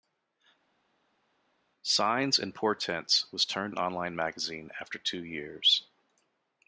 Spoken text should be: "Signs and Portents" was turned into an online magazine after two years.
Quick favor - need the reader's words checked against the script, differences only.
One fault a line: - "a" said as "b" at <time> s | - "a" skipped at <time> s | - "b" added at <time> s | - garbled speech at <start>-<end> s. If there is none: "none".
- "into" skipped at 3.7 s